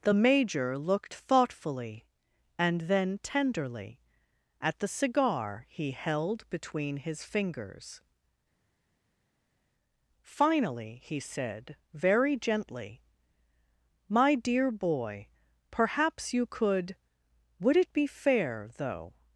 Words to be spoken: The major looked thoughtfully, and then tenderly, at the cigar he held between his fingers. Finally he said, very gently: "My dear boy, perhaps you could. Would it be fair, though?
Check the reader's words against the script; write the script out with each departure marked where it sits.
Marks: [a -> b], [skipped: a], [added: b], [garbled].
The major looked thoughtfully, and then tenderly, at the cigar he held between his fingers. Finally he said, very gently: "My dear boy, perhaps you could. Would it be fair, though?